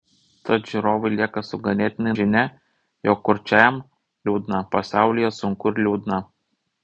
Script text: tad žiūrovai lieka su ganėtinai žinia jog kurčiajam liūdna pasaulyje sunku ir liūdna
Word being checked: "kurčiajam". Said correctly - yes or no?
yes